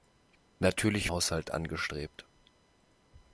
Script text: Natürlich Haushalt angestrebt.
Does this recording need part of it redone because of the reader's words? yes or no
no